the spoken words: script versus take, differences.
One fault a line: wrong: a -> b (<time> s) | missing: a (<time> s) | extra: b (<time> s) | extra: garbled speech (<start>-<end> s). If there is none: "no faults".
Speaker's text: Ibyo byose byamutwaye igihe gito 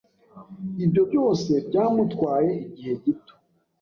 no faults